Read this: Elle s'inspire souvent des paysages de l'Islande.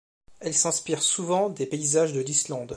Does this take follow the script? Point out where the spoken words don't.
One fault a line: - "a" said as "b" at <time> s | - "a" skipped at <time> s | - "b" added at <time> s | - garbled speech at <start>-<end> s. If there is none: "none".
none